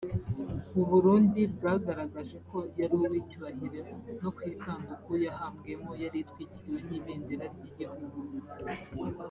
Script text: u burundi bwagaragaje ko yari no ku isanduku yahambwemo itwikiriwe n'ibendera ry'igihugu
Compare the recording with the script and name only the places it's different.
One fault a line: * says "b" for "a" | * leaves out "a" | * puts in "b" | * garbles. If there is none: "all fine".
* puts in "uw'icyubahiro"
* puts in "yari"